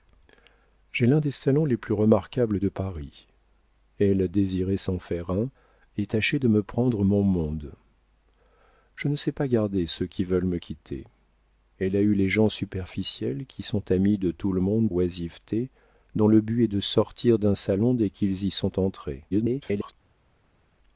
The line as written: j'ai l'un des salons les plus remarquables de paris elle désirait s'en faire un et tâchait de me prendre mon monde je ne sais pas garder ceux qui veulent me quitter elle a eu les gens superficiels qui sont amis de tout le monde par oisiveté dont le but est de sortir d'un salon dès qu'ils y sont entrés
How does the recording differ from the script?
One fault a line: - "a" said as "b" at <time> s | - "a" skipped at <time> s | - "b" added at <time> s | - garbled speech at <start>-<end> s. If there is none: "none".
- "par" skipped at 14.9 s
- garbled speech at 19.3-19.9 s